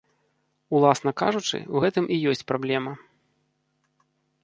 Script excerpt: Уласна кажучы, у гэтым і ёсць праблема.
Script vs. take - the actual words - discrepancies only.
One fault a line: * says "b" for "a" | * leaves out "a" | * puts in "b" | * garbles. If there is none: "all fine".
all fine